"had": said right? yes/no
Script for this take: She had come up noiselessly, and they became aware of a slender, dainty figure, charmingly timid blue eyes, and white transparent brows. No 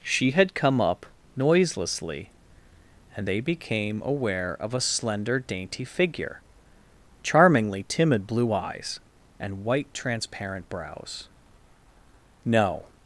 yes